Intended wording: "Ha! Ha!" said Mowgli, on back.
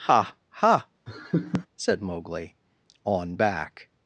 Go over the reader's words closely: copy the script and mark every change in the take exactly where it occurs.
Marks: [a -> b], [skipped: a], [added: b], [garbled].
"Ha! Ha!" said Mowgli, on back.